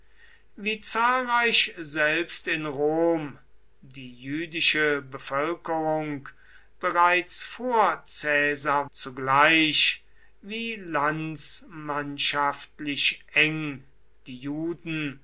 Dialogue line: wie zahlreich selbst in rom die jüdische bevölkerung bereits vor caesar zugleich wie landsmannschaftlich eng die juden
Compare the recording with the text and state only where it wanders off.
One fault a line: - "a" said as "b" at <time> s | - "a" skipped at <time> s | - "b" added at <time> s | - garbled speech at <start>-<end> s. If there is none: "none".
none